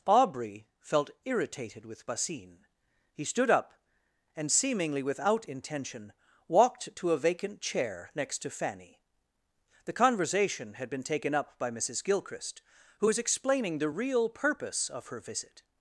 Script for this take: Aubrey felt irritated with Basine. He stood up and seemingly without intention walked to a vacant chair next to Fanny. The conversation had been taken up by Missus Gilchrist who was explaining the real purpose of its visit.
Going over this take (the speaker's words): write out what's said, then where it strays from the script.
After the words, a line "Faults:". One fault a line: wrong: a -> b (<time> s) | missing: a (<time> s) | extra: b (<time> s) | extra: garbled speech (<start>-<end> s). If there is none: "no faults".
Aubrey felt irritated with Basine. He stood up and seemingly without intention walked to a vacant chair next to Fanny. The conversation had been taken up by Missus Gilchrist who was explaining the real purpose of her visit.
Faults:
wrong: its -> her (15.1 s)